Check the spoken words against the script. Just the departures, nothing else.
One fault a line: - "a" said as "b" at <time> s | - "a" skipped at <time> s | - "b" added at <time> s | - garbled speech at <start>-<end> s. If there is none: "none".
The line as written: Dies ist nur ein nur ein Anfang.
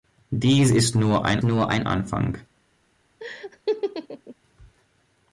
none